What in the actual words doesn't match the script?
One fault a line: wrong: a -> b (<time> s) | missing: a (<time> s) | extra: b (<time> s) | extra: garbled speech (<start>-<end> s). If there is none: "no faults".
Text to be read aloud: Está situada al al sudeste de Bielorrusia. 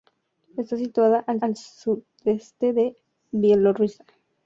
no faults